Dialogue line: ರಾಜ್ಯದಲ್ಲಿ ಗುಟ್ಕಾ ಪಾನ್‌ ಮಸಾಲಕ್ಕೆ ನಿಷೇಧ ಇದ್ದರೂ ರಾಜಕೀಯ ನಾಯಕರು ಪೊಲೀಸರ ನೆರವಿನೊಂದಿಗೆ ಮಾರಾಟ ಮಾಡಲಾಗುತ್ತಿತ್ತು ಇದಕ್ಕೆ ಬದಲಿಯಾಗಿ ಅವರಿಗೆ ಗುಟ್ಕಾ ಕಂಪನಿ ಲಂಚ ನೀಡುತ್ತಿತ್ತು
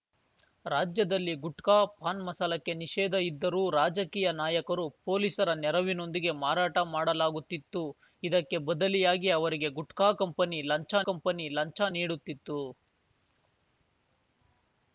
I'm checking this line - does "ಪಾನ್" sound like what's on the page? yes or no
yes